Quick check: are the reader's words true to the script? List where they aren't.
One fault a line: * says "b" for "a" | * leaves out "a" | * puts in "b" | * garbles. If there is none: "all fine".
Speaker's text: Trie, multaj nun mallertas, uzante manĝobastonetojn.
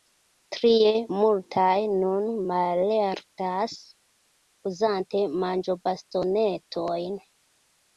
all fine